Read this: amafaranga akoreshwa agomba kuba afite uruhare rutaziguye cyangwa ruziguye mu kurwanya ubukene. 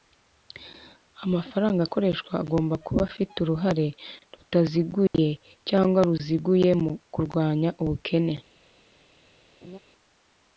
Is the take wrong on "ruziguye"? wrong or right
right